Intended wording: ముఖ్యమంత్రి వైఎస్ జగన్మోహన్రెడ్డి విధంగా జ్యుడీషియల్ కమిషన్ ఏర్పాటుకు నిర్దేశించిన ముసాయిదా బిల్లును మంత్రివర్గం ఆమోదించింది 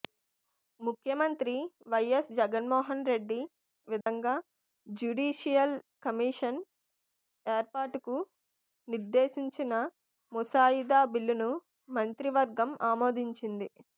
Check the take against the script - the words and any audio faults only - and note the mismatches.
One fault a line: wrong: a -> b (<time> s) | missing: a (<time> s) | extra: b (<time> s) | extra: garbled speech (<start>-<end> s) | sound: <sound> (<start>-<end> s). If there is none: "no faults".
sound: dropout (4.0-4.1 s)